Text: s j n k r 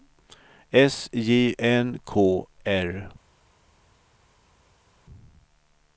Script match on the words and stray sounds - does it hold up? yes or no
yes